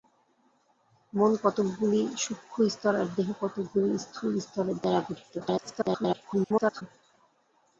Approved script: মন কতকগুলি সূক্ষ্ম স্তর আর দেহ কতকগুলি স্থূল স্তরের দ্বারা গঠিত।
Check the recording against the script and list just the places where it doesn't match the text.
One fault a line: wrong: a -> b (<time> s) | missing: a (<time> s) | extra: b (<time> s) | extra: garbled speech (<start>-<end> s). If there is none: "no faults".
extra: garbled speech (5.4-6.8 s)